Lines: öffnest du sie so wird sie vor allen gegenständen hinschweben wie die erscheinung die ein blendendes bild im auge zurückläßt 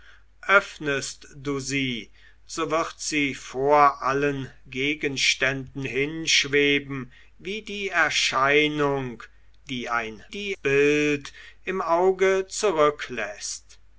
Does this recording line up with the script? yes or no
no